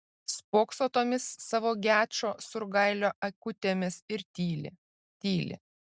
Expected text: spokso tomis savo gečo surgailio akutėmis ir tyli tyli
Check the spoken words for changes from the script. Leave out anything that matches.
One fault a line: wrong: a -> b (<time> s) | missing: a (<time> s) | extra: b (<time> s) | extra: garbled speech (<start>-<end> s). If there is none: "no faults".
no faults